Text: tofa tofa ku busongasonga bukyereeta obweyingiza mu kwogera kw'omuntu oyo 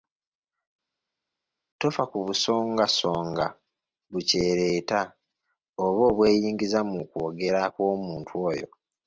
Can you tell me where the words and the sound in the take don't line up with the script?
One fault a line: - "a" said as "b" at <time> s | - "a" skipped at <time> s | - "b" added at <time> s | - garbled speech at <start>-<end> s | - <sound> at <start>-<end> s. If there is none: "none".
- "tofa" skipped at 2.0 s
- "oba" added at 5.8 s